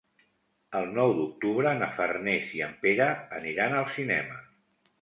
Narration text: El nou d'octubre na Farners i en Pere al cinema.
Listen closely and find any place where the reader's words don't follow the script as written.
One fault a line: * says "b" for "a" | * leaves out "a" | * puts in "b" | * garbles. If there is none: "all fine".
* puts in "aniran"